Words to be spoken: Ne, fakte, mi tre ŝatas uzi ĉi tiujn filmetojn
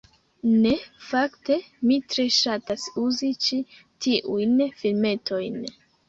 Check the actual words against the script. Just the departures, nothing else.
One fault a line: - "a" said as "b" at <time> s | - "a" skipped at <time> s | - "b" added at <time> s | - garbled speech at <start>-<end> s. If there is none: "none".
none